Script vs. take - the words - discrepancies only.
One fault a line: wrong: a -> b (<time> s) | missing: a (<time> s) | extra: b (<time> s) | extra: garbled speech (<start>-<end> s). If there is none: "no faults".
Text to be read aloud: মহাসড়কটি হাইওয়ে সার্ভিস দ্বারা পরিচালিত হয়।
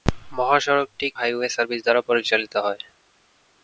no faults